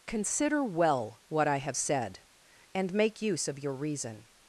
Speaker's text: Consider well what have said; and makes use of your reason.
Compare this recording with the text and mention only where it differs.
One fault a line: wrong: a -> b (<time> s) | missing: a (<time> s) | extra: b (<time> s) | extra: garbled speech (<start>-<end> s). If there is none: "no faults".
extra: I (1.5 s)
wrong: makes -> make (2.9 s)